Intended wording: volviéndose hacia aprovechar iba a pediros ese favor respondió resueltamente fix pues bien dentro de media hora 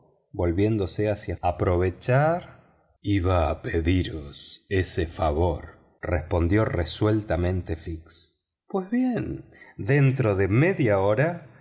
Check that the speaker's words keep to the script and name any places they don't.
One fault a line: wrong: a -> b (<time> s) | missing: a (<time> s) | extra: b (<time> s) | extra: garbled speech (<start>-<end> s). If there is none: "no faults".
no faults